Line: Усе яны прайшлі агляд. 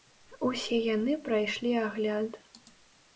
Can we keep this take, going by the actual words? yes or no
yes